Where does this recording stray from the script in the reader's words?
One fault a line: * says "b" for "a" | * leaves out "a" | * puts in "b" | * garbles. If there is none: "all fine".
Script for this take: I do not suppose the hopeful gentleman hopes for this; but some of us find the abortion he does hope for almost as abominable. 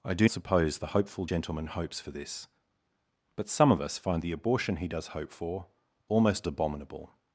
* leaves out "not"
* leaves out "as"